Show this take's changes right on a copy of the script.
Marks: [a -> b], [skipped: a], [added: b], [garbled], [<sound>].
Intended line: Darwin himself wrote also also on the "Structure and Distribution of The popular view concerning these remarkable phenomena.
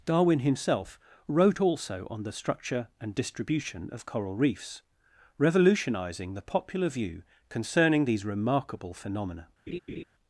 Darwin himself wrote also [skipped: also] on the "Structure and Distribution of [added: Coral Reefs revolutionising] The popular view concerning these remarkable phenomena. [laugh]